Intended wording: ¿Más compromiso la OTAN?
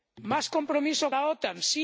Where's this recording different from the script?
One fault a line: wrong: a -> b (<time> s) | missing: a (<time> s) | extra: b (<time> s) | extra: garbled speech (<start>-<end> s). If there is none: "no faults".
no faults